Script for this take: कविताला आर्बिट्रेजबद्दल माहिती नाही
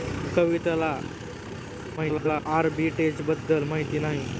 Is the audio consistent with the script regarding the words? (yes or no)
no